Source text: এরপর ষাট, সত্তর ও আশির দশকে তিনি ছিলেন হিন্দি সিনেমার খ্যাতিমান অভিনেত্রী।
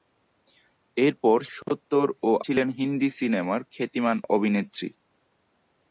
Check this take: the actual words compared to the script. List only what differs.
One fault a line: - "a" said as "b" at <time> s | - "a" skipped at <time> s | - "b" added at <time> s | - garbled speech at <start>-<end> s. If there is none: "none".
- "ষাট" skipped at 1.4 s
- "আশির দশকে তিনি" skipped at 2.3 s